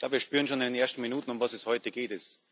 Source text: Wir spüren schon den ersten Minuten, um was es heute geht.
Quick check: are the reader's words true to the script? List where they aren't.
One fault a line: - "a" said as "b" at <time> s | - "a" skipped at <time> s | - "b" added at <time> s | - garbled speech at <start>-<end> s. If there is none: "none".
- "in" added at 0.6 s